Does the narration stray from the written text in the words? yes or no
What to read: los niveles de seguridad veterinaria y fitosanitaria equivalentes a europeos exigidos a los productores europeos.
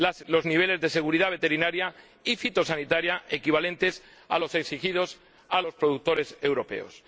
yes